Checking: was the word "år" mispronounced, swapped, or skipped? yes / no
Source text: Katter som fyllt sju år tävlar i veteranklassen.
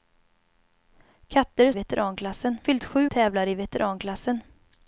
yes